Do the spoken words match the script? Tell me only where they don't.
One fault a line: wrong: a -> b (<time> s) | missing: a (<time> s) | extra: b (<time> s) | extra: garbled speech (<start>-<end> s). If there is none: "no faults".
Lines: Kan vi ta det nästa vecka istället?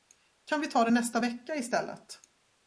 no faults